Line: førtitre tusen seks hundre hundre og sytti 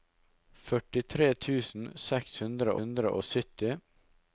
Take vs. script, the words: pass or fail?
pass